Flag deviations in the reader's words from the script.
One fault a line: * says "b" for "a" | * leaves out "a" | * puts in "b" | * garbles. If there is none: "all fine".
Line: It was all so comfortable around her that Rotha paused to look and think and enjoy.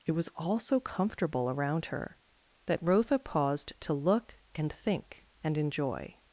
all fine